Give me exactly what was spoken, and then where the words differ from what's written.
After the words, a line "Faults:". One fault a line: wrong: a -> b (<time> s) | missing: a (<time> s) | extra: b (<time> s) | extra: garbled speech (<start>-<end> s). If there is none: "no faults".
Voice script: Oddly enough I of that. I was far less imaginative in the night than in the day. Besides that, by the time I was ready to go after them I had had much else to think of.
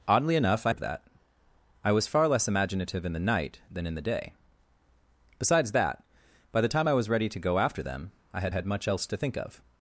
Oddly enough I of that. I was far less imaginative in the night than in the day. Besides that, by the time I was ready to go after them I had had much else to think of.
Faults:
no faults